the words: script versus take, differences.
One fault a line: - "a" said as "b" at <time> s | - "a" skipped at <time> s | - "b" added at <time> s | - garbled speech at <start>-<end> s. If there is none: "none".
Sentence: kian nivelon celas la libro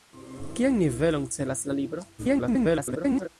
- garbled speech at 2.2-3.3 s